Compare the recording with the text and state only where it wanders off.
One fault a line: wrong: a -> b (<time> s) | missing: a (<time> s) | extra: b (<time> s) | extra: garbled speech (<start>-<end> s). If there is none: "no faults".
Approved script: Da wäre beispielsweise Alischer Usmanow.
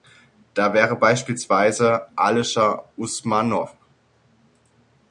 no faults